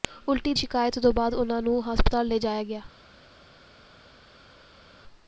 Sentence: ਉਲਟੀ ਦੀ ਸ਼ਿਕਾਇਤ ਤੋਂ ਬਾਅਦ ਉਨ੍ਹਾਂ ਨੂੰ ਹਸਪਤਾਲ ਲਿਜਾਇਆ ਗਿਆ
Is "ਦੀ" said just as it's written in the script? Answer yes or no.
no